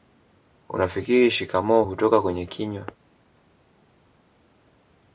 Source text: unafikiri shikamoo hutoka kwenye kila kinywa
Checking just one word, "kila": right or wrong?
wrong